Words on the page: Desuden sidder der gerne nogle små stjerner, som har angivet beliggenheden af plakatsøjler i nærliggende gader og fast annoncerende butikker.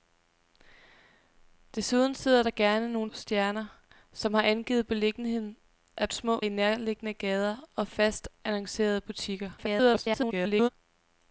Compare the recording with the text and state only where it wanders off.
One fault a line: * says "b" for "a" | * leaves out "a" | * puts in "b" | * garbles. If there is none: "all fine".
* leaves out "små"
* says "små" for "plakatsøjler"
* garbles